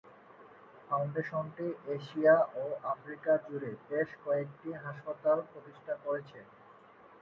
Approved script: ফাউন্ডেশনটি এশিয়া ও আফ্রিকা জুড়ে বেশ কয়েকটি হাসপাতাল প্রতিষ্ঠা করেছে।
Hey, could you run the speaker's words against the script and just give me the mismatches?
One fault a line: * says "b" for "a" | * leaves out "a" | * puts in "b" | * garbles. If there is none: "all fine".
all fine